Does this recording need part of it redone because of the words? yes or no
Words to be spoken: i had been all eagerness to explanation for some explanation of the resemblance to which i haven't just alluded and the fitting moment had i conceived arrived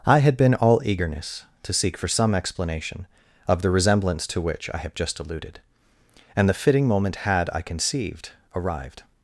yes